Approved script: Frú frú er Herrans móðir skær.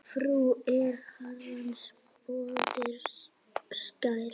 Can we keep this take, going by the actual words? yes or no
no